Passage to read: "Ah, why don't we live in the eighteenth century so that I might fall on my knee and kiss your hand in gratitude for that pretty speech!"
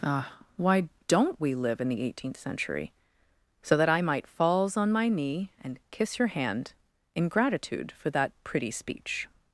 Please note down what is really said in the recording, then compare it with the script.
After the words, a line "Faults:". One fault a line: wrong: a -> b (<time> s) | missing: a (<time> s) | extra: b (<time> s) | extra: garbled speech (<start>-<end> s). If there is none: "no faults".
"Ah, why don't we live in the eighteenth century so that I might falls on my knee and kiss your hand in gratitude for that pretty speech!"
Faults:
wrong: fall -> falls (4.3 s)